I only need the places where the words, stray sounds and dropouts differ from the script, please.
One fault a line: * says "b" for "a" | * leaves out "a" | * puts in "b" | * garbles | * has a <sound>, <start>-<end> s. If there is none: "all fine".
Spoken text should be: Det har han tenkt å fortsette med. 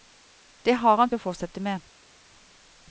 * leaves out "tenkt"